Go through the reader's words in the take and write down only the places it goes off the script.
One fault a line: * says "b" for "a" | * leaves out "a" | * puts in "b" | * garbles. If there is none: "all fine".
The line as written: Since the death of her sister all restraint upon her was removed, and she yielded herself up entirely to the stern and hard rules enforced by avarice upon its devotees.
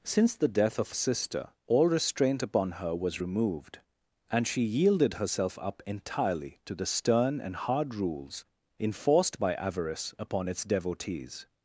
* leaves out "her"